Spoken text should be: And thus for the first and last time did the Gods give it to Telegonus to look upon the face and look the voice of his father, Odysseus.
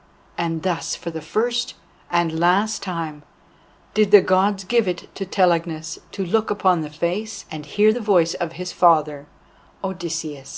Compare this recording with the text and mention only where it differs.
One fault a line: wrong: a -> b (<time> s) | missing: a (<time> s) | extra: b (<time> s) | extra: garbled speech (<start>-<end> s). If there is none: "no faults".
wrong: look -> hear (7.7 s)